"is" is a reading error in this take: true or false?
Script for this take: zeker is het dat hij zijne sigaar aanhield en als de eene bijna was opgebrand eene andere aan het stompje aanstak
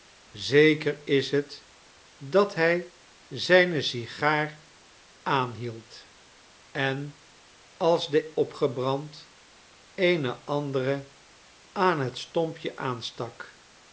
false